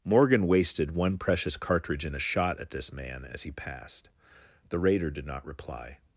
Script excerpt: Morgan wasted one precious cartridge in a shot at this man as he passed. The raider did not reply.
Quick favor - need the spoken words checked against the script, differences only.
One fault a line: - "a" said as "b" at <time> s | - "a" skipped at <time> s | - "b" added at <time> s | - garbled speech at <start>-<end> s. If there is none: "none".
none